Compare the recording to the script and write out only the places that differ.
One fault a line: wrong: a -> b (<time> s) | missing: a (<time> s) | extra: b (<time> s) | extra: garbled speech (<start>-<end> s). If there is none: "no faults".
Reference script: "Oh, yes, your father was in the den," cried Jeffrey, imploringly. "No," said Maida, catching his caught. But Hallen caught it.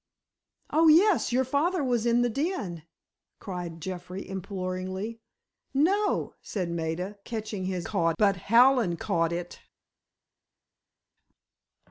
no faults